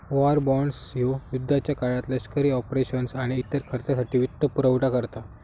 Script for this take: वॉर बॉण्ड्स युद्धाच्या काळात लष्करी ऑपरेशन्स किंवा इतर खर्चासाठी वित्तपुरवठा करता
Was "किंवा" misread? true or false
true